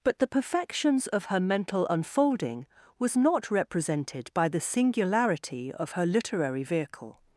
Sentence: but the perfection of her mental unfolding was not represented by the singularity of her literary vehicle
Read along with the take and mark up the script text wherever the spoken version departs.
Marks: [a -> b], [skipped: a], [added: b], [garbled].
but the [perfection -> perfections] of her mental unfolding was not represented by the singularity of her literary vehicle